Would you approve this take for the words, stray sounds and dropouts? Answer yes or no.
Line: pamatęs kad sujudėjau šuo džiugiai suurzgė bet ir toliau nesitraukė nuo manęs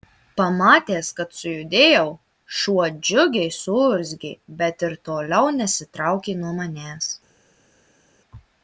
yes